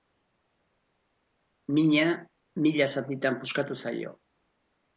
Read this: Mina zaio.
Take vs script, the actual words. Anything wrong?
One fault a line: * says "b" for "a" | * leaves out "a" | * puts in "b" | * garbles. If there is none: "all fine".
* puts in "mila zatitan puskatu"